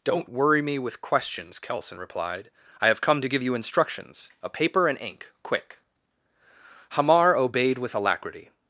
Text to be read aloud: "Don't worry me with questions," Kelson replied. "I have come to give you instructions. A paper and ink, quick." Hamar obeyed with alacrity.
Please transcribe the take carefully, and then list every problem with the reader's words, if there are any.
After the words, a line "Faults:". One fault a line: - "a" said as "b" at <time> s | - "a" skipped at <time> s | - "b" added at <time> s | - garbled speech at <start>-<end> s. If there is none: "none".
"Don't worry me with questions," Kelson replied. "I have come to give you instructions. A paper and ink, quick." Hamar obeyed with alacrity.
Faults:
none